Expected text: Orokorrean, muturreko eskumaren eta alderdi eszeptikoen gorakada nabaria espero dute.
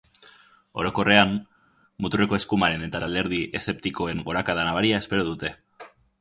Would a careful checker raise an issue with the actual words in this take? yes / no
yes